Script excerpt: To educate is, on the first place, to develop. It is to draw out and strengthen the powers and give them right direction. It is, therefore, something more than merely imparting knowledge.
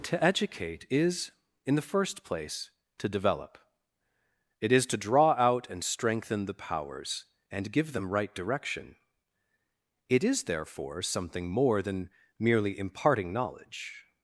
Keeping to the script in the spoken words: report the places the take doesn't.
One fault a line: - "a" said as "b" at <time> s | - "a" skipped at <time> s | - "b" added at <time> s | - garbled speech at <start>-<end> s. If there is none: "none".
- "on" said as "in" at 1.7 s